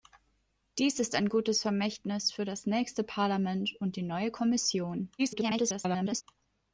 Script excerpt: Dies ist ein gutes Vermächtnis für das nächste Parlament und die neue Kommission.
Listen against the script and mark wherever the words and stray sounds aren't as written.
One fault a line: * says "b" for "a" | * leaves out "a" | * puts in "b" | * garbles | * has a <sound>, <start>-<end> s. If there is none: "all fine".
* garbles